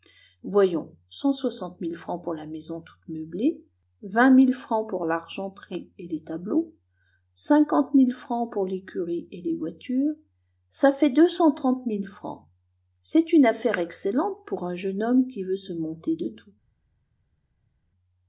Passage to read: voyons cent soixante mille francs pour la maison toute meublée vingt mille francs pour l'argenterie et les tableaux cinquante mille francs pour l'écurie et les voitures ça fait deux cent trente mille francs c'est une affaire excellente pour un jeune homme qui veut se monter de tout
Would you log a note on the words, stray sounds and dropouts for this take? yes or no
no